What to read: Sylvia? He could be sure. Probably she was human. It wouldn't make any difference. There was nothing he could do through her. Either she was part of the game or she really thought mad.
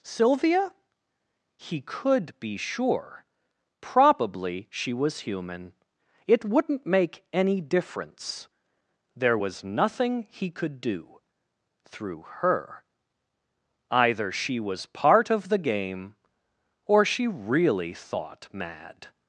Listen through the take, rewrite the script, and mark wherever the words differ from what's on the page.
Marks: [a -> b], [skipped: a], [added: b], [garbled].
Sylvia? He could be sure. Probably she was human. It wouldn't make any difference. There was nothing he could do through her. Either she was part of the game or she really thought mad.